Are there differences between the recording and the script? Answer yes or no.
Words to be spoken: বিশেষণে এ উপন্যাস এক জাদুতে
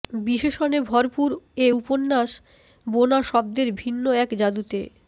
yes